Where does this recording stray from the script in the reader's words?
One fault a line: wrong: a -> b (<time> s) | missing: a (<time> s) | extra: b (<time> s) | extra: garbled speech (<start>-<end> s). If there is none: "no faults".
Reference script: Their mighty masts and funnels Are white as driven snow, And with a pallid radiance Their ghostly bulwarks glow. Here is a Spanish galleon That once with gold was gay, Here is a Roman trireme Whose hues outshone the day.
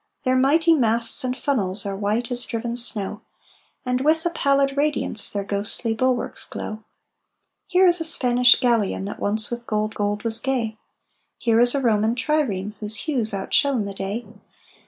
extra: gold (9.9 s)